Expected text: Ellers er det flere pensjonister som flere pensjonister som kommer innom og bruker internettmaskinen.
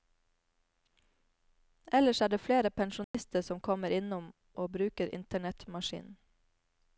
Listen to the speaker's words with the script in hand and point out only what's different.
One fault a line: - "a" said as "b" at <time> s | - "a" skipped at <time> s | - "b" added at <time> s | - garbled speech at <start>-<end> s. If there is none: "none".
- "flere pensjonister som" skipped at 3.6 s